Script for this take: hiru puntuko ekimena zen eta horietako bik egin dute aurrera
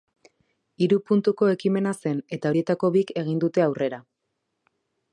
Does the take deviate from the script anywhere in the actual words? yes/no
no